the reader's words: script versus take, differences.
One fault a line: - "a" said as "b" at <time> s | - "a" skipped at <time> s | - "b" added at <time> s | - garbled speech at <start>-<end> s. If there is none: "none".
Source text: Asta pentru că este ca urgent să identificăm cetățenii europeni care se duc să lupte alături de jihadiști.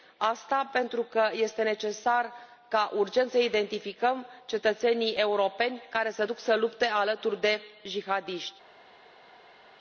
- "necesar" added at 1.6 s